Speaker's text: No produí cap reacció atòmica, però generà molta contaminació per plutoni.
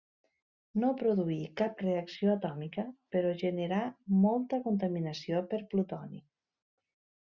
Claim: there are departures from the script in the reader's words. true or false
false